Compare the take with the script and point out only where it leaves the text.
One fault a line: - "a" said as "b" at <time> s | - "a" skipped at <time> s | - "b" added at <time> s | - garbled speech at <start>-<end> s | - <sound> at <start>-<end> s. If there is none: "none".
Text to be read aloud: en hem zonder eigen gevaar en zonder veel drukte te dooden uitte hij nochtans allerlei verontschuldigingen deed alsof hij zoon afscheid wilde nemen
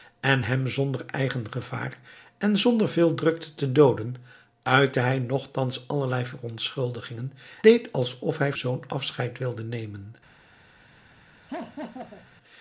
- laugh at 11.5-12.3 s